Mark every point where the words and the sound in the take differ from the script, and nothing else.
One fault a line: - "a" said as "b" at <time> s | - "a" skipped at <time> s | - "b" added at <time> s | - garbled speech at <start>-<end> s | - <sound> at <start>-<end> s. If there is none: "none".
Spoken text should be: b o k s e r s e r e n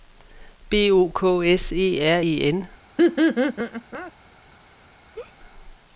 - "s e r" skipped at 2.2 s
- laugh at 3.0-4.1 s
- laugh at 5.1-5.3 s